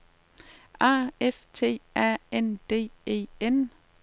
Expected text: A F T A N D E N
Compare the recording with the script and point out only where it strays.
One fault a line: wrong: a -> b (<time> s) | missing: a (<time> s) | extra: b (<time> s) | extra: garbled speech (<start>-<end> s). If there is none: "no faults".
no faults